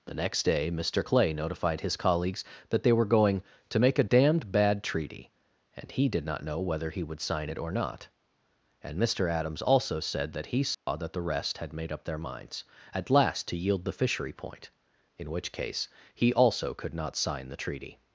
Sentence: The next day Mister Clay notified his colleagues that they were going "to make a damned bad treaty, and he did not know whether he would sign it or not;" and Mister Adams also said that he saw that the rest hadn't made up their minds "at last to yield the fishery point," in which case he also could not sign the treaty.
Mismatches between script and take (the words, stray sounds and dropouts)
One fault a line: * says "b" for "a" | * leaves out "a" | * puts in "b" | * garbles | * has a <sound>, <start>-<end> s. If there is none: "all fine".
* has a dropout, 10.7-10.9 s
* says "had" for "hadn't"